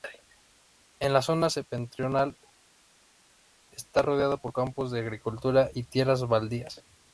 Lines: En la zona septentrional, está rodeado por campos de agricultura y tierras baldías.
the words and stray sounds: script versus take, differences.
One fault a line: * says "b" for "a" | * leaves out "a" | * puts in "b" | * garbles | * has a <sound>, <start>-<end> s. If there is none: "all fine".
all fine